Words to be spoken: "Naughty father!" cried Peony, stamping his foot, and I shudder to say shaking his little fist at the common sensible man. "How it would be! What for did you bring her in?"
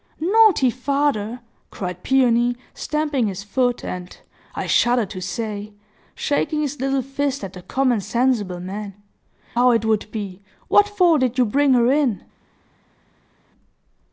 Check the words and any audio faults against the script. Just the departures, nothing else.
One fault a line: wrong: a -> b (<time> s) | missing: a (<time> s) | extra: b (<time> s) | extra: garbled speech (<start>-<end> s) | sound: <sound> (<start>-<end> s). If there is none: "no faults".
no faults